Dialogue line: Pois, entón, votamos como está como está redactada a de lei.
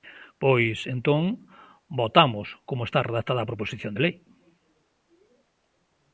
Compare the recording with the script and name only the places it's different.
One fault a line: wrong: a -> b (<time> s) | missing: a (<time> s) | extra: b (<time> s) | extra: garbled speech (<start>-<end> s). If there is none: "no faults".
missing: como está (3.0 s)
extra: proposición (3.5 s)